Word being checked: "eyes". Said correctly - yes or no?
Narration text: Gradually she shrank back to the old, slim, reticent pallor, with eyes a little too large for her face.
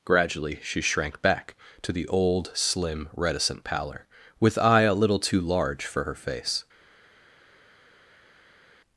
no